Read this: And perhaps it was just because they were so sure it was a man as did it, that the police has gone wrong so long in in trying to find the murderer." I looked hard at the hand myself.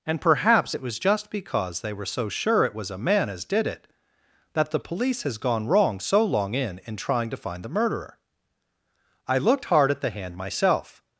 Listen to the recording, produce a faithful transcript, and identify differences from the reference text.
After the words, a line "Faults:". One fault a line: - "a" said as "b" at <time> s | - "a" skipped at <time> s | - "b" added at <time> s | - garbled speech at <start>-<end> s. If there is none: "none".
And perhaps it was just because they were so sure it was a man as did it, that the police has gone wrong so long in in trying to find the murderer." I looked hard at the hand myself.
Faults:
none